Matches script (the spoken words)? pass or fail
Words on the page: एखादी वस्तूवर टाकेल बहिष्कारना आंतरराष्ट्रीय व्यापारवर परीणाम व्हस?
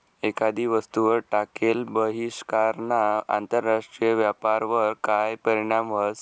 fail